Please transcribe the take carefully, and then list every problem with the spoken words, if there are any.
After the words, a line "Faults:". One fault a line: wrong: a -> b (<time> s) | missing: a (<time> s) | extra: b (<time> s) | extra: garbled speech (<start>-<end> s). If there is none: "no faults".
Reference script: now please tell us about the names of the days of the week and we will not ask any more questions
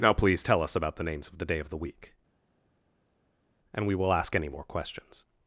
now please tell us about the names of the day of the week and we will ask any more questions
Faults:
wrong: days -> day (1.4 s)
missing: not (4.1 s)